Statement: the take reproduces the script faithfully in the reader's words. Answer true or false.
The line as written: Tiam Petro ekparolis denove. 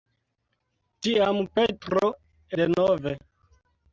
false